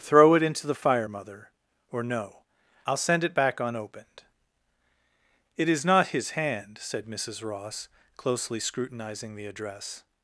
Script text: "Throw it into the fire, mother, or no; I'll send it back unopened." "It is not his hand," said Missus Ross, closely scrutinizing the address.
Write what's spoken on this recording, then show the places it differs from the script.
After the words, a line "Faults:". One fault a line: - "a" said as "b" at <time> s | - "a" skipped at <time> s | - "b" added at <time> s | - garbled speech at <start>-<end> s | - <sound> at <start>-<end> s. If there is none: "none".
"Throw it into the fire, mother, or no; I'll send it back unopened." "It is not his hand," said Missus Ross, closely scrutinizing the address.
Faults:
none